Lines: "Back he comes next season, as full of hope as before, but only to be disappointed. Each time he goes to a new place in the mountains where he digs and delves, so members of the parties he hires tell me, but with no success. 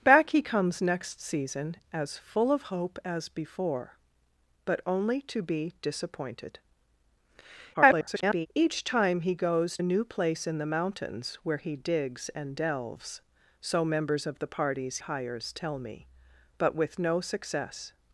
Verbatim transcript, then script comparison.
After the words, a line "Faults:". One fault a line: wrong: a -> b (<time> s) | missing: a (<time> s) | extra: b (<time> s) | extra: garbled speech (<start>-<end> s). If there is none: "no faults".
"Back he comes next season, as full of hope as before, but only to be disappointed. [garbled] Each time he goes a new place in the mountains where he digs and delves, so members of the parties hires tell me, but with no success.
Faults:
extra: garbled speech (7.7-8.5 s)
missing: to (9.8 s)
missing: he (15.0 s)